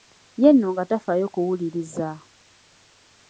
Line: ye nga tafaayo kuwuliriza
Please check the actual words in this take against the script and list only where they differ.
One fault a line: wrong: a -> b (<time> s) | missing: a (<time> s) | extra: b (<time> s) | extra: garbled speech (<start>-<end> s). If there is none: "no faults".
extra: nno (0.5 s)